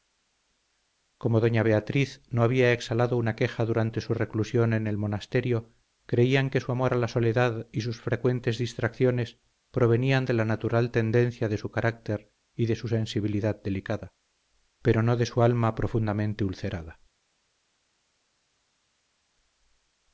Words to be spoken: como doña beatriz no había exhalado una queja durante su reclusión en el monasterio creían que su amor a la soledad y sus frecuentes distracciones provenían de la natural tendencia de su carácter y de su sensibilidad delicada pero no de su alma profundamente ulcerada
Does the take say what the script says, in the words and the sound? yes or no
yes